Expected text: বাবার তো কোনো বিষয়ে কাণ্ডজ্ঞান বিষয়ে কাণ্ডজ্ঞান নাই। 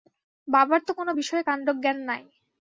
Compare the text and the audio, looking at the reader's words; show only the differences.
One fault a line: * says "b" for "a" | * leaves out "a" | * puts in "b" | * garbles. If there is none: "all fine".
* leaves out "বিষয়ে কাণ্ডজ্ঞান"